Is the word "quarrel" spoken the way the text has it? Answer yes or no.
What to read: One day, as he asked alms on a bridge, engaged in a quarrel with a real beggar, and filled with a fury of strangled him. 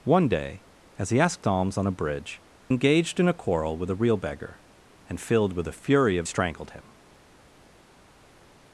yes